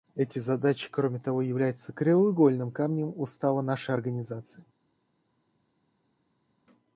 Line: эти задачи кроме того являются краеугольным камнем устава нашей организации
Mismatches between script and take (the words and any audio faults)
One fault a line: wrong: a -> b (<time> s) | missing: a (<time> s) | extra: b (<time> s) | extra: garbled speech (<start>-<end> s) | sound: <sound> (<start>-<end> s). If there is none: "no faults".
no faults